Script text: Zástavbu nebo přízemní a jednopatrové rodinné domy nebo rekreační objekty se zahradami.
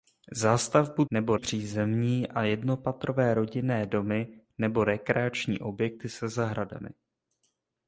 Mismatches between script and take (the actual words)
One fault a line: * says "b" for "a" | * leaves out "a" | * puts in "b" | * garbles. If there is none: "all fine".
all fine